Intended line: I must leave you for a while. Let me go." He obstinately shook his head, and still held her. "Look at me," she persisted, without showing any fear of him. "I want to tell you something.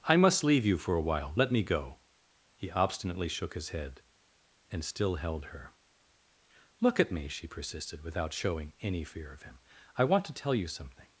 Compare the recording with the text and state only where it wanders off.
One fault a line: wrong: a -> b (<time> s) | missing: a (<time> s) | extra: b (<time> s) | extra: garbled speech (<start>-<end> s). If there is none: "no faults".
no faults